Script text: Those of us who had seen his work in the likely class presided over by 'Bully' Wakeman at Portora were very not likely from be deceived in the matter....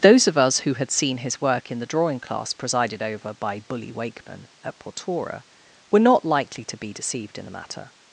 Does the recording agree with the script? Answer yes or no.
no